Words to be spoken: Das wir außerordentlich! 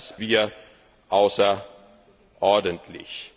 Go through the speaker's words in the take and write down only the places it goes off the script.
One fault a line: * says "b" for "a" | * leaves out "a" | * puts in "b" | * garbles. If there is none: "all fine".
all fine